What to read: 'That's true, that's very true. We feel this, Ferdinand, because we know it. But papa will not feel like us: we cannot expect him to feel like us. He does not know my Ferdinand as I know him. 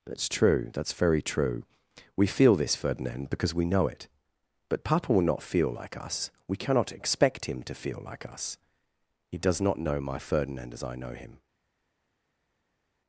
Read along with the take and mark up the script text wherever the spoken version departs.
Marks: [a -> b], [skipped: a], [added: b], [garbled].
'That's true, that's very true. We feel this, Ferdinand, because we know it. But papa will not feel like us: we cannot expect him to feel like us. He does not know my Ferdinand as I know him.